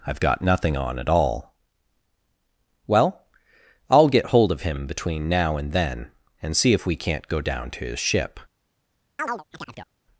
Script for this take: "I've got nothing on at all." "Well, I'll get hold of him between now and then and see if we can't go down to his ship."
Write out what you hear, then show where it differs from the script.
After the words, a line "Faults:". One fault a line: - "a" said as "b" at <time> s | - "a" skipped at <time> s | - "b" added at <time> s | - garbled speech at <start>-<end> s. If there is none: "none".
"I've got nothing on at all." "Well, I'll get hold of him between now and then and see if we can't go down to his ship."
Faults:
none